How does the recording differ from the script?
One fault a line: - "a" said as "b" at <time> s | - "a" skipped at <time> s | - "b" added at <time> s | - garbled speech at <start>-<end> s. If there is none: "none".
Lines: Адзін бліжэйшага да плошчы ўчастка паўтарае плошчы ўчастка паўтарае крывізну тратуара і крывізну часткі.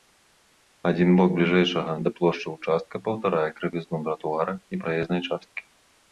- "бок" added at 1.2 s
- "плошчы ўчастка паўтарае" skipped at 3.5 s
- "крывізну" said as "праезнай" at 4.8 s